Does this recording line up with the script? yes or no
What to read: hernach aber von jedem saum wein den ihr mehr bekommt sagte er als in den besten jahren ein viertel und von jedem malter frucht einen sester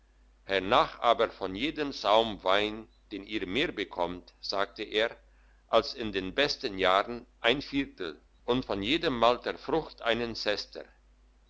yes